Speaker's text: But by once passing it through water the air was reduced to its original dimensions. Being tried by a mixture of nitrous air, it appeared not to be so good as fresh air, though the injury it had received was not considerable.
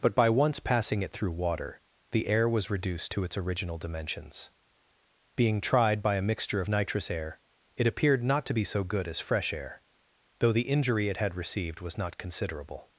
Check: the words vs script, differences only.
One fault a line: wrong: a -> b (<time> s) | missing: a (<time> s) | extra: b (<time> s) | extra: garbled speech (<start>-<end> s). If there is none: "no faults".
no faults